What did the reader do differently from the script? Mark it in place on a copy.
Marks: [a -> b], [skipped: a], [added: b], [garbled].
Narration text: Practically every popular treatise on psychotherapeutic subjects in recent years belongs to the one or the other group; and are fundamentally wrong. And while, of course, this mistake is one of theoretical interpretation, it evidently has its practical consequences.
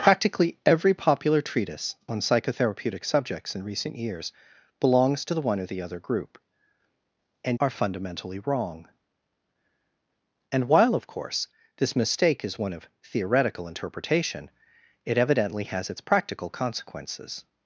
Practically every popular treatise on psychotherapeutic subjects in recent years belongs to the one or the other group; and are fundamentally wrong. And while, of course, this mistake is one of theoretical interpretation, it evidently has its practical consequences.